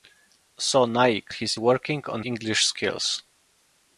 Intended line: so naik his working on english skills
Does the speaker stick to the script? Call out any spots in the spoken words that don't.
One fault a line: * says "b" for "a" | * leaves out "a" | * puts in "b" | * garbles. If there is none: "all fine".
all fine